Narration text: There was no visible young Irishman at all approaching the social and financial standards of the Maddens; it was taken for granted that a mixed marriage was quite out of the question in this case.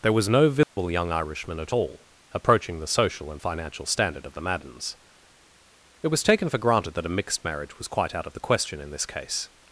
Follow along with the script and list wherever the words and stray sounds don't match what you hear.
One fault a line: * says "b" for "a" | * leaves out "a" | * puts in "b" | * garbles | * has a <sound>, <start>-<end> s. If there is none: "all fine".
* has a dropout, 0.6-0.8 s
* says "standard" for "standards"